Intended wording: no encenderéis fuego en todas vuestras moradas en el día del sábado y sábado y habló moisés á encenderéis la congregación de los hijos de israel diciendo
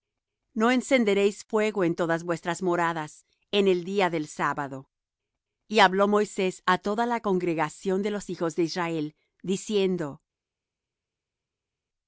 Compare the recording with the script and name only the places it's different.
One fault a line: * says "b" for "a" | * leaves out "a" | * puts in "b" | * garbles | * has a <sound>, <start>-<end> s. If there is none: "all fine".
* leaves out "sábado y"
* says "toda" for "encenderéis"